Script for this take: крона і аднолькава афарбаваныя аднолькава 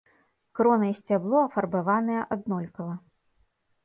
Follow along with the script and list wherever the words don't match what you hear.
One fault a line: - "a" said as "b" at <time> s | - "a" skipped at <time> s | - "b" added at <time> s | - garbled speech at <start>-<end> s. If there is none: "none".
- "аднолькава" said as "сцябло" at 1.0 s